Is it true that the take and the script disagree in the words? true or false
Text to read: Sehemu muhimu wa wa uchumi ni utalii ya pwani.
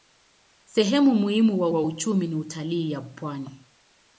false